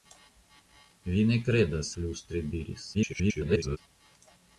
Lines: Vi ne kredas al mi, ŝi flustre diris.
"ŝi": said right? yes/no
no